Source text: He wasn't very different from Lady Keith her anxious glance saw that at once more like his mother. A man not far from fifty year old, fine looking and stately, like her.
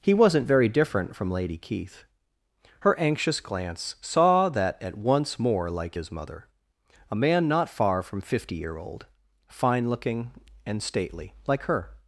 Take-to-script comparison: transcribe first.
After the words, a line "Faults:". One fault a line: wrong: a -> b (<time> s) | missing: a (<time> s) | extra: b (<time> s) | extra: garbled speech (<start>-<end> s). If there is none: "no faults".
He wasn't very different from Lady Keith her anxious glance saw that at once more like his mother. A man not far from fifty year old, fine looking and stately, like her.
Faults:
no faults